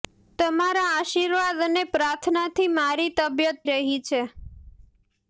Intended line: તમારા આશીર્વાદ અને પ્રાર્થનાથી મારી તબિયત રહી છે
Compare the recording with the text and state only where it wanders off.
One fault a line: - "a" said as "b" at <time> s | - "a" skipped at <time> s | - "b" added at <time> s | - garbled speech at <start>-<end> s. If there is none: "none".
none